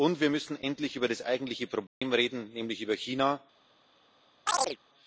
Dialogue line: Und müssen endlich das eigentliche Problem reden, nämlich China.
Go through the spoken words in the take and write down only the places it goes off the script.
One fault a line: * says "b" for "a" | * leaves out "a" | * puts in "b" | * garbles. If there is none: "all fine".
* puts in "wir"
* puts in "über"
* puts in "über"